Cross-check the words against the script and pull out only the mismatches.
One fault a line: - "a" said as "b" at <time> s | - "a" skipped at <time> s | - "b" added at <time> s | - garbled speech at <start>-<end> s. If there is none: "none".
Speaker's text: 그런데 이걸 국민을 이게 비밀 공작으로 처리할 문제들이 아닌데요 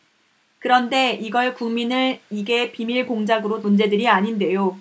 - "처리할" skipped at 3.6 s